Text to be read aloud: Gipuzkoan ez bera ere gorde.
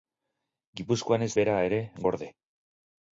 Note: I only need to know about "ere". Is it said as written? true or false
true